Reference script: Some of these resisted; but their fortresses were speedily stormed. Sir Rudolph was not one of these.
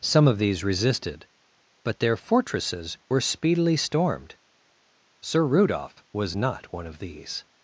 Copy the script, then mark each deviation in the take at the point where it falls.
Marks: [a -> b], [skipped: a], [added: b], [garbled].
Some of these resisted; but their fortresses were speedily stormed. Sir Rudolph was not one of these.